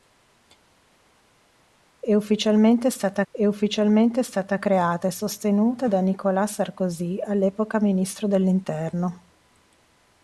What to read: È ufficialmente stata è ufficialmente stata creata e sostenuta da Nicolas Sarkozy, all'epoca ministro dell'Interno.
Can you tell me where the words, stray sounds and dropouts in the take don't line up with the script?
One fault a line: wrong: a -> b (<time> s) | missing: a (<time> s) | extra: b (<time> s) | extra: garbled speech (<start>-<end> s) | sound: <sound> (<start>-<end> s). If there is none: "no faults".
no faults